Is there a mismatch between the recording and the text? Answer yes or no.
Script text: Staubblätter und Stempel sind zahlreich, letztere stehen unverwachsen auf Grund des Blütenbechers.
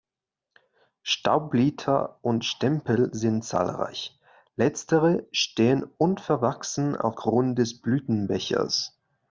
no